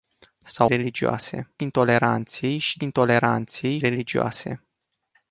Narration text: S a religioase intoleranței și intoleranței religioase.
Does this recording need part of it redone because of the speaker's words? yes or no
no